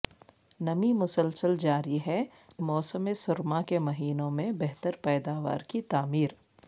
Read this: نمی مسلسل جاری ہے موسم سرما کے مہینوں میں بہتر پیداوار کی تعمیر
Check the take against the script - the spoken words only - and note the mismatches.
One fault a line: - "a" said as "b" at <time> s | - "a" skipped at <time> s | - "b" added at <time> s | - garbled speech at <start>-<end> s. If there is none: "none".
none